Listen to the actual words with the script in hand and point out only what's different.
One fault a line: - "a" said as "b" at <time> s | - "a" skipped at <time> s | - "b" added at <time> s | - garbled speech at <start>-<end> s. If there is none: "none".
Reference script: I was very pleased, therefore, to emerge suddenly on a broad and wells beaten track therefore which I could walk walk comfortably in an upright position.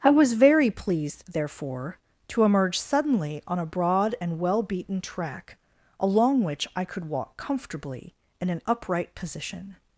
- "wells" said as "well" at 4.4 s
- "therefore" said as "along" at 6.0 s
- "walk" skipped at 7.4 s